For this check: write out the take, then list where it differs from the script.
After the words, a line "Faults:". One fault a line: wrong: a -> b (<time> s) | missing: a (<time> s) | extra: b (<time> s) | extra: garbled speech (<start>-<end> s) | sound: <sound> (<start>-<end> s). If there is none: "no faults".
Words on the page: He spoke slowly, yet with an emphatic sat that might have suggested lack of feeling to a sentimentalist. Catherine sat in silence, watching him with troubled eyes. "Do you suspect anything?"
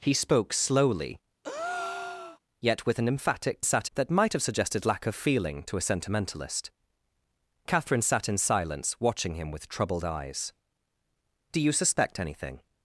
He spoke slowly, yet with an emphatic sat that might have suggested lack of feeling to a sentimentalist. Catherine sat in silence, watching him with troubled eyes. "Do you suspect anything?"
Faults:
sound: breath (1.4-2.4 s)